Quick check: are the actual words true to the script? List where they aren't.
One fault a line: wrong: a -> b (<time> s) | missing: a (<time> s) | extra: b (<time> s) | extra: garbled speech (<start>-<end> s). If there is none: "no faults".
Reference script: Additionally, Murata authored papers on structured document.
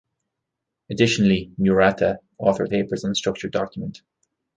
no faults